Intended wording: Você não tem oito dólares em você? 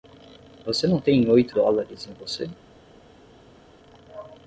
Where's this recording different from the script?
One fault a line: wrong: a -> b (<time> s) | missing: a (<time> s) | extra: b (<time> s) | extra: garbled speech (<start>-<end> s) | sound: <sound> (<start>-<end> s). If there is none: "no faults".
no faults